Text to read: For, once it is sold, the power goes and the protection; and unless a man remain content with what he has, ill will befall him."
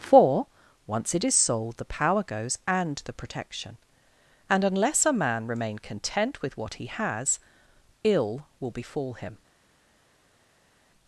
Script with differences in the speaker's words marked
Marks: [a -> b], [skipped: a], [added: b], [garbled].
For, once it is sold, the power goes and the protection; and unless a man remain content with what he has, ill will befall him."